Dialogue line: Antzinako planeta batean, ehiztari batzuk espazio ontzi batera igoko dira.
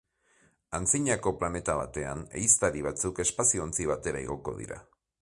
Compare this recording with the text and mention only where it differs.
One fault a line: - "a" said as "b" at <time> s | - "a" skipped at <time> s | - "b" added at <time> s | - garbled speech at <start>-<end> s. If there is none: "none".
none